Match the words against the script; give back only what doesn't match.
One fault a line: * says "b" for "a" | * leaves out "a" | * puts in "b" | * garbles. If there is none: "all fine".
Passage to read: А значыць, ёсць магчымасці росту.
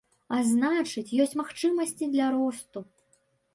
* puts in "для"